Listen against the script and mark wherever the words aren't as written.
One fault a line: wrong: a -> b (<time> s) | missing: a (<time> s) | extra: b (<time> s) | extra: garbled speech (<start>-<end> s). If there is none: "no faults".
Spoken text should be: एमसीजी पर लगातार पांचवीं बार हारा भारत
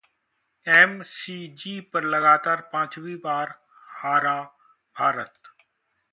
no faults